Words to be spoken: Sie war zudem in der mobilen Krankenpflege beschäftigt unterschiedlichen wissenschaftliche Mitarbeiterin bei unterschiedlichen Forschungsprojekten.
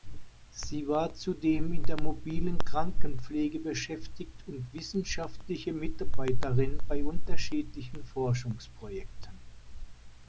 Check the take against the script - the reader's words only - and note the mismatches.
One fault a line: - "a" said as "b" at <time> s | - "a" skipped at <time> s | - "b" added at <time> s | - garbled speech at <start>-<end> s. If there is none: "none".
- "unterschiedlichen" said as "und" at 4.5 s